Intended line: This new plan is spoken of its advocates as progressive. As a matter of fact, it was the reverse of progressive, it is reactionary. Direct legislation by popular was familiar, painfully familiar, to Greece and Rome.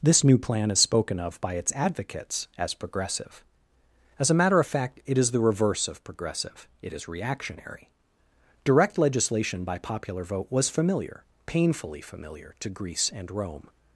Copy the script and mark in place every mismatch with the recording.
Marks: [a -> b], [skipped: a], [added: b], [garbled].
This new plan is spoken of [added: by] its advocates as progressive. As a matter of fact, it [was -> is] the reverse of progressive, it is reactionary. Direct legislation by popular [added: vote] was familiar, painfully familiar, to Greece and Rome.